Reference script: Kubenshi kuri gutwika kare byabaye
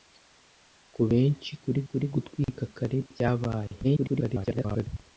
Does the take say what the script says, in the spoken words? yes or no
no